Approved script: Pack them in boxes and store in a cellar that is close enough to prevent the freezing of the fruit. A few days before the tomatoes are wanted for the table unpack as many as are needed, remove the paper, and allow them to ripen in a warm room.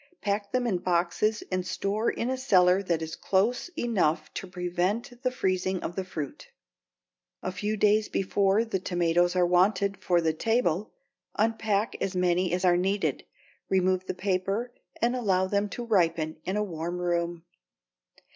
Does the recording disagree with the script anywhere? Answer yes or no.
no